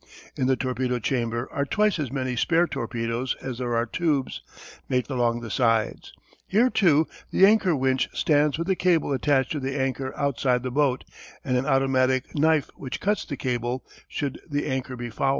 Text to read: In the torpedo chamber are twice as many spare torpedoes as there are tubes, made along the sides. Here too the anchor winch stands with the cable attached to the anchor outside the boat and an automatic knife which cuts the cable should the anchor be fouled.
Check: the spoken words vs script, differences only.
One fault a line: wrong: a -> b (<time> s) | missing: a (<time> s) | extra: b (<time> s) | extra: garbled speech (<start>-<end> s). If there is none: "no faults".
no faults